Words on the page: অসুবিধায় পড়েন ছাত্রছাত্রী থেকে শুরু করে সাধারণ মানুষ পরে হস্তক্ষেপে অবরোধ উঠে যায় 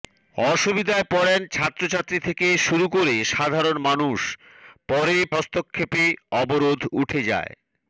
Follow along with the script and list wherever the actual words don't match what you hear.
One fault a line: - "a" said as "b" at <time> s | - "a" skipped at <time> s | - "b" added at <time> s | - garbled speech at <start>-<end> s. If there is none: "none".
none